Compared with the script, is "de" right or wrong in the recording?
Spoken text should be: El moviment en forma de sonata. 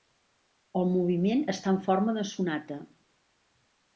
right